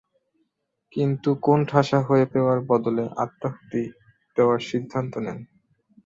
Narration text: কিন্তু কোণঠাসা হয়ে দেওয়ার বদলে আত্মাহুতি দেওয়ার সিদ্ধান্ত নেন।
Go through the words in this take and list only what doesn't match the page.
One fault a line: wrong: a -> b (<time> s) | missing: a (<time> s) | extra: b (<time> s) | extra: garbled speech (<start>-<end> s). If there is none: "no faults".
no faults